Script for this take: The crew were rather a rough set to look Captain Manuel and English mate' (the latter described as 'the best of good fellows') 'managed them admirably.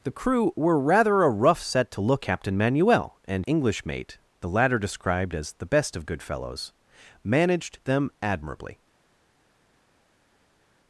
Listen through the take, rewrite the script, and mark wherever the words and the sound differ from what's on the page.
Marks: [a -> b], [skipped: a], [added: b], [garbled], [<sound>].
The crew were rather a rough set to look Captain Manuel and English mate' (the latter described as 'the best of good fellows') 'managed them admirably.